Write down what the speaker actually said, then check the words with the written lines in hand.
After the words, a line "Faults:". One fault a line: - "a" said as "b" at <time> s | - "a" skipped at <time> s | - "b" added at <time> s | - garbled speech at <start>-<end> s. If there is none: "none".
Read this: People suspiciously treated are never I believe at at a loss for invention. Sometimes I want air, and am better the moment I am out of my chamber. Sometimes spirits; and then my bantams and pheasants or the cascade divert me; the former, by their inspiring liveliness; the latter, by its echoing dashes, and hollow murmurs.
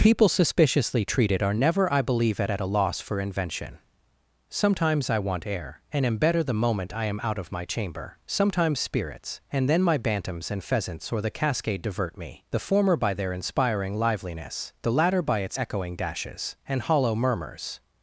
People suspiciously treated are never I believe at at a loss for invention. Sometimes I want air, and am better the moment I am out of my chamber. Sometimes spirits; and then my bantams and pheasants or the cascade divert me; the former, by their inspiring liveliness; the latter, by its echoing dashes, and hollow murmurs.
Faults:
none